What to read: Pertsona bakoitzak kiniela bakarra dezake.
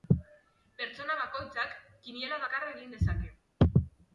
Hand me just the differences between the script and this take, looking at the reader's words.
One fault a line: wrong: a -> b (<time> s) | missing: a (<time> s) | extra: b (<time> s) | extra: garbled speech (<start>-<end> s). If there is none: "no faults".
extra: egin (2.8 s)